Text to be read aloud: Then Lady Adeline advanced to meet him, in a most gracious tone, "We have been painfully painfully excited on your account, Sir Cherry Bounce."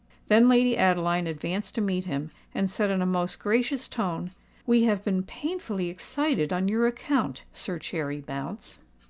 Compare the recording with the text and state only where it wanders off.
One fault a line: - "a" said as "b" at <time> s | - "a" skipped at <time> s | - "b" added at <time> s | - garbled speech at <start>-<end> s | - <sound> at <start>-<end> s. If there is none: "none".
- "and said" added at 2.5 s
- "painfully" skipped at 5.9 s